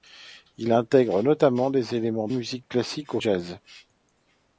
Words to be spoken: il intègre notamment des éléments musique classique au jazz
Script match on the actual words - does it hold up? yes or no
yes